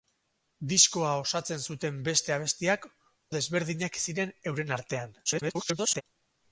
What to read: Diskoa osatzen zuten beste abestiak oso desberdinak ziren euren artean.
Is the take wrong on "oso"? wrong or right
wrong